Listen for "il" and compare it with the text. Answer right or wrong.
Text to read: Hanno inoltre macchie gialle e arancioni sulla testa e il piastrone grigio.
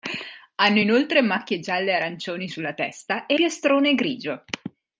wrong